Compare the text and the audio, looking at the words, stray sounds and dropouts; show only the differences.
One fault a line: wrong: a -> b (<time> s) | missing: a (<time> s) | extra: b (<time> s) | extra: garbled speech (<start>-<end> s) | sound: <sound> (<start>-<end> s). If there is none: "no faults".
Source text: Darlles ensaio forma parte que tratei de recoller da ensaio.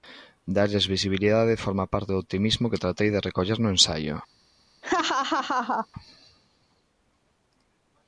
wrong: ensaio -> visibilidade (0.9 s)
extra: do optimismo (2.1 s)
wrong: da -> no (3.6 s)
sound: laugh (4.8-5.9 s)